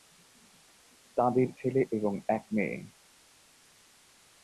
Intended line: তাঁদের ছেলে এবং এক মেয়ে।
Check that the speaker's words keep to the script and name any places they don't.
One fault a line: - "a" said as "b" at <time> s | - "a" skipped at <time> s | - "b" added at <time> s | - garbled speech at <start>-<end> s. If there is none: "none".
none